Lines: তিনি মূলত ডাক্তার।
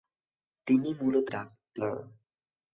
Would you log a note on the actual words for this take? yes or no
no